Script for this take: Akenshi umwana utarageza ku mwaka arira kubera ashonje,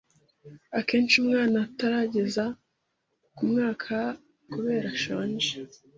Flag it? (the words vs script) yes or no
yes